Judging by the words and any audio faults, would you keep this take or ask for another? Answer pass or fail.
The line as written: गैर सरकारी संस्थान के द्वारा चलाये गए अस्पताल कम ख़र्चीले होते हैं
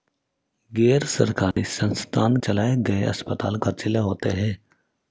fail